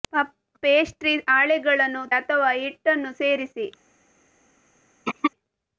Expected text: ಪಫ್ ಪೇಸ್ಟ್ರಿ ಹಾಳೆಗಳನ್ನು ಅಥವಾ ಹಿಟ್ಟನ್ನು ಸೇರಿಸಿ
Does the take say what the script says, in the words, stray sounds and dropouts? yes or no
no